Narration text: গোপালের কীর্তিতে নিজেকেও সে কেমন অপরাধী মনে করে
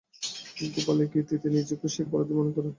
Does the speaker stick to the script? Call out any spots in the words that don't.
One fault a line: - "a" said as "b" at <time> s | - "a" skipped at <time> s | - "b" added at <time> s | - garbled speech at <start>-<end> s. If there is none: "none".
- "কেমন" skipped at 2.0 s